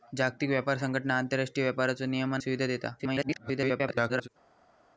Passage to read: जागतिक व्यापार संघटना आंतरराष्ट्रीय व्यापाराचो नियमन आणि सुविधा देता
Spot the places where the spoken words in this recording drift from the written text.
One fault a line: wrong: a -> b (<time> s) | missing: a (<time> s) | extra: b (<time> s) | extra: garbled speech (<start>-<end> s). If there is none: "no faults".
missing: आणि (2.4 s)
extra: garbled speech (3.0-4.3 s)